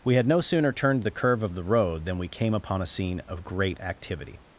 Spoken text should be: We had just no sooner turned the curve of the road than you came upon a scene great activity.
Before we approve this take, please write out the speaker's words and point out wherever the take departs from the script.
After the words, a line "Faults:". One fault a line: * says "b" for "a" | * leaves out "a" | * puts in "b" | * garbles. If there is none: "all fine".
We had no sooner turned the curve of the road than we came upon a scene of great activity.
Faults:
* leaves out "just"
* says "we" for "you"
* puts in "of"